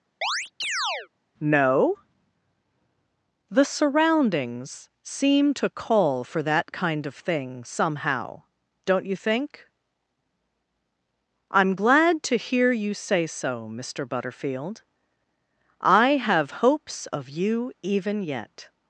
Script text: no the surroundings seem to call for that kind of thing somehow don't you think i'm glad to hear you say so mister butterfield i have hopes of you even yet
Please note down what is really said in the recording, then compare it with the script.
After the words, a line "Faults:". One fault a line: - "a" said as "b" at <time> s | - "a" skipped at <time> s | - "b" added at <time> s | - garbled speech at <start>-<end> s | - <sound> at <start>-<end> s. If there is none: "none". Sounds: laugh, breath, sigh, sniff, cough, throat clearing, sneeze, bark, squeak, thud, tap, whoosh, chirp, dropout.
no the surroundings seem to call for that kind of thing somehow don't you think i'm glad to hear you say so mister butterfield i have hopes of you even yet
Faults:
- chirp at 0.2-1.1 s